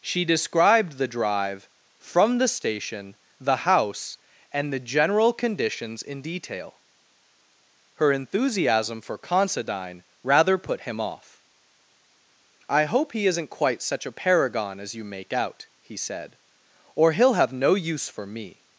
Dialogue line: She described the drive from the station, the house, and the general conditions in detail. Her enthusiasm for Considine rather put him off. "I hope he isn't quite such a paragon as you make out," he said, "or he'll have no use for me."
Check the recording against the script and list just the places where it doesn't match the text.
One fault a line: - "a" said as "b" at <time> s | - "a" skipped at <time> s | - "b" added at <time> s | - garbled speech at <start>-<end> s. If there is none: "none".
none